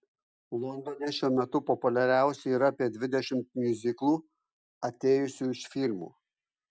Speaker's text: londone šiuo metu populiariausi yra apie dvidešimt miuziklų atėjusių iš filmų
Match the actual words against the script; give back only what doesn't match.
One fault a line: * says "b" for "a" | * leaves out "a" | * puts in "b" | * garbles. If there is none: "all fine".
all fine